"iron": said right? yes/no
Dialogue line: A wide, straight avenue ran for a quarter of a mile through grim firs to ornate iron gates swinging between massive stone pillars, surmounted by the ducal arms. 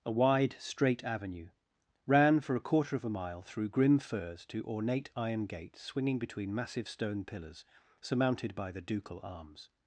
yes